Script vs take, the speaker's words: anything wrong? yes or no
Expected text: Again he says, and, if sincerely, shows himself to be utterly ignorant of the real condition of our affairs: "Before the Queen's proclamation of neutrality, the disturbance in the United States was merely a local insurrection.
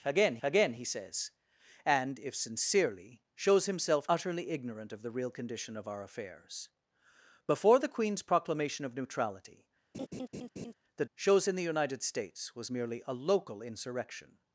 yes